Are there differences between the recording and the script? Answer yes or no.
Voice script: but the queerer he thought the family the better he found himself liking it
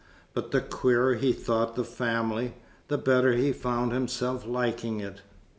no